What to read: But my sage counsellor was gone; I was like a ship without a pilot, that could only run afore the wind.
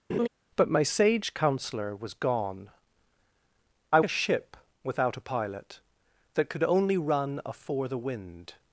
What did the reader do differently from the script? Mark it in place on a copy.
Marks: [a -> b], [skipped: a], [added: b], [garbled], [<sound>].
[laugh] But my sage counsellor was gone; I [skipped: was like] a ship without a pilot, that could only run afore the wind.